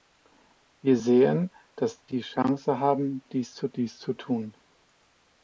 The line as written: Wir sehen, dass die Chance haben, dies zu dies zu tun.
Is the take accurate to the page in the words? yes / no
yes